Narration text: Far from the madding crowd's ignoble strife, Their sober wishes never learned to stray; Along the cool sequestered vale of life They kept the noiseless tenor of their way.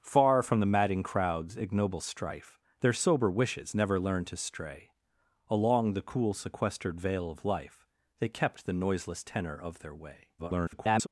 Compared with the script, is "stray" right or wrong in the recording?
right